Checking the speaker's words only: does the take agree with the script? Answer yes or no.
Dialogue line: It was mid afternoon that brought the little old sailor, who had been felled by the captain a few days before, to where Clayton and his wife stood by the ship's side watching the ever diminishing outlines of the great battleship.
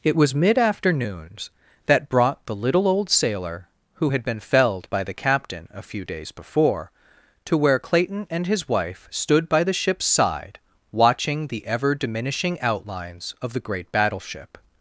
no